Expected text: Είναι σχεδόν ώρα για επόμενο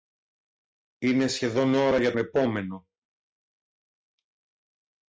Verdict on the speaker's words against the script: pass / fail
pass